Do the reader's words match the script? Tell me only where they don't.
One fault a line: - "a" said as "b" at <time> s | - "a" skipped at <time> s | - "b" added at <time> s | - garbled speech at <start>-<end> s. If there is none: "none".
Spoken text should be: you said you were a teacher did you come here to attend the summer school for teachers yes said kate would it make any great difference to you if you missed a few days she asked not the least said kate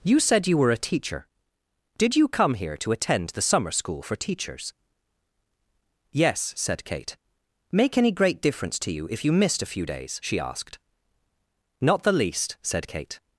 - "would it" skipped at 7.2 s